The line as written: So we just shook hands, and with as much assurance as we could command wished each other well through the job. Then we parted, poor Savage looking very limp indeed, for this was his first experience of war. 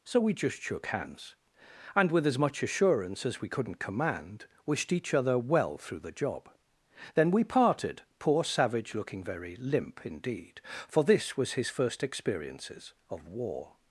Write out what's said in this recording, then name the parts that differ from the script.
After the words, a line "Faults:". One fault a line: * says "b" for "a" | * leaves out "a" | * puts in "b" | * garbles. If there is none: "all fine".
So we just shook hands, and with as much assurance as we couldn't command wished each other well through the job. Then we parted, poor Savage looking very limp indeed, for this was his first experiences of war.
Faults:
* says "couldn't" for "could"
* says "experiences" for "experience"